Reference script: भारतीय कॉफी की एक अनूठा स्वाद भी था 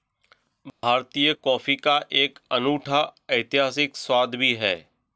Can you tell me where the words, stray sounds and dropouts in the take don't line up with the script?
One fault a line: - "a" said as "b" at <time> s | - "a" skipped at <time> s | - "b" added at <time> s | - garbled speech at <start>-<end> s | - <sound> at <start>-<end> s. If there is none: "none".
- dropout at 0.7-0.8 s
- "की" said as "का" at 1.8 s
- "ऐतिहासिक" added at 3.3 s
- "था" said as "है" at 4.5 s